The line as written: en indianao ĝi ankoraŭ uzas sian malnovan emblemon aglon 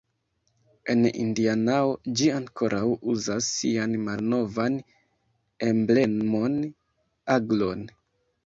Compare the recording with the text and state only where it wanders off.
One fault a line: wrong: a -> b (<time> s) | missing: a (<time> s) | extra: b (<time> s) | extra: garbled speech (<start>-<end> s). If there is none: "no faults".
no faults